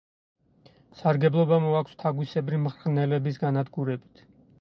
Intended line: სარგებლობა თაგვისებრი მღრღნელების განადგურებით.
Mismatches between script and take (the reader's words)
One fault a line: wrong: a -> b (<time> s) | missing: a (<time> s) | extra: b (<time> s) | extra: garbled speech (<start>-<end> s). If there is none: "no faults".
extra: მოაქვს (1.6 s)